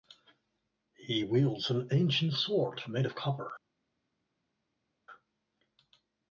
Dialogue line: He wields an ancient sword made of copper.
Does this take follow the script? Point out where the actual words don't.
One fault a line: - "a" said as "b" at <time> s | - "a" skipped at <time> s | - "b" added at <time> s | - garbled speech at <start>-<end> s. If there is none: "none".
none